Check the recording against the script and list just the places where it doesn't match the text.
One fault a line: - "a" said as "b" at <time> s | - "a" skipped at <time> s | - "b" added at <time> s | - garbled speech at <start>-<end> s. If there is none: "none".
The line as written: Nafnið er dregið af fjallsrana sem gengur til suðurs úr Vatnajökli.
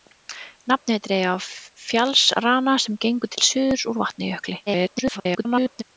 - garbled speech at 4.7-5.8 s